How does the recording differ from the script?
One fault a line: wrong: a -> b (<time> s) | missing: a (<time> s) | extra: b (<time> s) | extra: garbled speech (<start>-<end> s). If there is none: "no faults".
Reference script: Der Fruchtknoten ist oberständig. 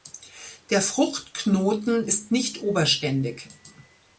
extra: nicht (2.3 s)